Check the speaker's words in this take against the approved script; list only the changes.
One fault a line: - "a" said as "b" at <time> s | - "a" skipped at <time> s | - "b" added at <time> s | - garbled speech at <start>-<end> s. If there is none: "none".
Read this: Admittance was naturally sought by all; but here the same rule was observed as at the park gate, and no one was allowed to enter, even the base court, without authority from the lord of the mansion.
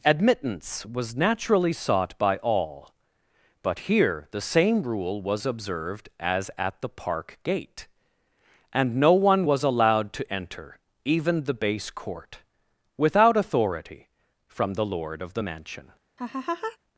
none